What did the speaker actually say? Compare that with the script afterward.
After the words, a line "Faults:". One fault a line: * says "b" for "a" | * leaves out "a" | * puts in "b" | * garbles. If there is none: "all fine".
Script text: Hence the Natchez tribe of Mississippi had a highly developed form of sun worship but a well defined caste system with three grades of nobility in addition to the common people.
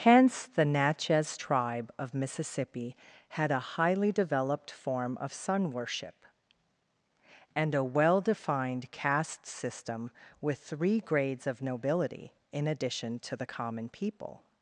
Hence the Natchez tribe of Mississippi had a highly developed form of sun worship and a well defined caste system with three grades of nobility in addition to the common people.
Faults:
* says "and" for "but"